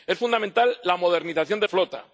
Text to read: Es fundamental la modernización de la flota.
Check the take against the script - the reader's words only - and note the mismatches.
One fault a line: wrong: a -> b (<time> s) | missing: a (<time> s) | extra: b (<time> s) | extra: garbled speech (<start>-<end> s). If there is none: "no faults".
missing: la (1.7 s)